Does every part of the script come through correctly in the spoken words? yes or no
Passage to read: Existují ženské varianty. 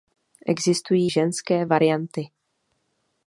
yes